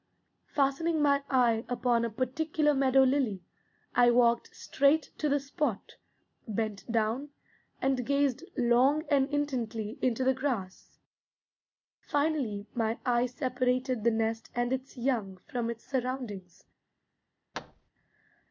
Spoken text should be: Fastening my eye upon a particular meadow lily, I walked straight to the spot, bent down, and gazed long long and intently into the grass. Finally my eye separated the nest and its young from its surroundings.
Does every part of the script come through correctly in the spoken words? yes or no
no